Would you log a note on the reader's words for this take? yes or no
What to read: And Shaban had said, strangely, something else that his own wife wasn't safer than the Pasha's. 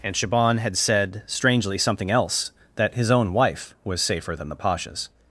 yes